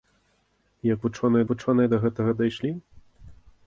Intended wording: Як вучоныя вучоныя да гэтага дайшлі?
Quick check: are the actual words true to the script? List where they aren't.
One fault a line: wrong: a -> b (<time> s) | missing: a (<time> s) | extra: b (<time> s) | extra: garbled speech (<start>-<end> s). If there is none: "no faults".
no faults